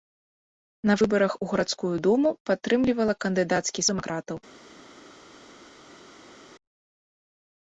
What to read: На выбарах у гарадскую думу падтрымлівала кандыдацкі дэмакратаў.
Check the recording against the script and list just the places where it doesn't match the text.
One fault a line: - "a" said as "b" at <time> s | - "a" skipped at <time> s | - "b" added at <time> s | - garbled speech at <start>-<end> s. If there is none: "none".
none